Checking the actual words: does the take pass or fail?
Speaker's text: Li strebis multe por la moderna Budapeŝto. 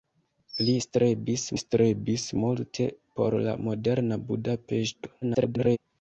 fail